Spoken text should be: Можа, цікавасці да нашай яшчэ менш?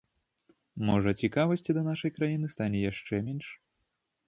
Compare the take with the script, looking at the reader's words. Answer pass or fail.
fail